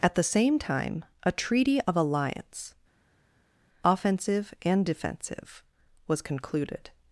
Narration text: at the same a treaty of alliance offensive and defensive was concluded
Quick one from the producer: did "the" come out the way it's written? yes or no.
yes